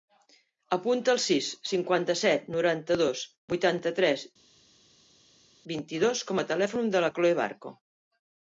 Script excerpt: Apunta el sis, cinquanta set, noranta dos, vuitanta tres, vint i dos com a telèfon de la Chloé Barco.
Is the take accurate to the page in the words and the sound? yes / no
yes